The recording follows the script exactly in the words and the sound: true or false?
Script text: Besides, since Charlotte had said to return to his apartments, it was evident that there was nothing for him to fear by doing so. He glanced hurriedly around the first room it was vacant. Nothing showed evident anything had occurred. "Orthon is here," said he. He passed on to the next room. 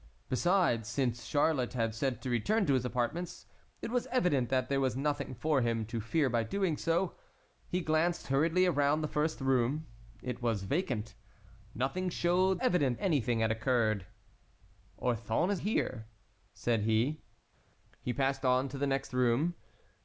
true